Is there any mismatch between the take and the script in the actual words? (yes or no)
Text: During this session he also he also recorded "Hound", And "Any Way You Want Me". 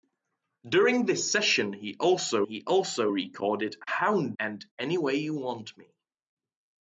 no